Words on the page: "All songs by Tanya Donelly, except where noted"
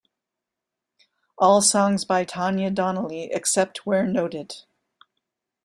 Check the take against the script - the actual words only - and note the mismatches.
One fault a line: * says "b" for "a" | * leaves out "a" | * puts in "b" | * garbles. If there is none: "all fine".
all fine